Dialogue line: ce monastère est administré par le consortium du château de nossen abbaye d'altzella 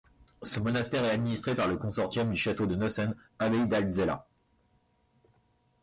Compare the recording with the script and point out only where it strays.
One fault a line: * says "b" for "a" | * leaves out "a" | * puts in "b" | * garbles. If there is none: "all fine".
all fine